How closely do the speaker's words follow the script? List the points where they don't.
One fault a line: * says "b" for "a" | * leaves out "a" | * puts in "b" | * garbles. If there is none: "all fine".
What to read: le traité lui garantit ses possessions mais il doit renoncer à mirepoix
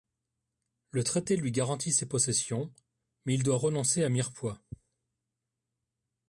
all fine